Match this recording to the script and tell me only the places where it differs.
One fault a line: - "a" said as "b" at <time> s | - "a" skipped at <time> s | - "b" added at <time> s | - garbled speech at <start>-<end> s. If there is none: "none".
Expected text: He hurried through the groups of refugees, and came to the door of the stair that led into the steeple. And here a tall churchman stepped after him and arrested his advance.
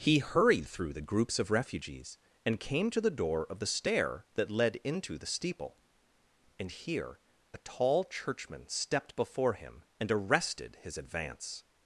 - "after" said as "before" at 9.2 s